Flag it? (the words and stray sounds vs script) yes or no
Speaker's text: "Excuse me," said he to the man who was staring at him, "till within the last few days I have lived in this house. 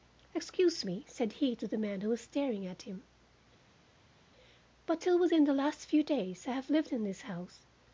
yes